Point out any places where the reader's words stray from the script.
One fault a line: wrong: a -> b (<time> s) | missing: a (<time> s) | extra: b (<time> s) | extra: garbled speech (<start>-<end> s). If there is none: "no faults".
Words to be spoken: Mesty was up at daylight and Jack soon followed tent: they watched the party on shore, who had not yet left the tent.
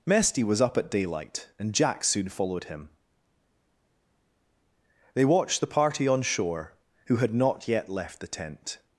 wrong: tent -> him (2.7 s)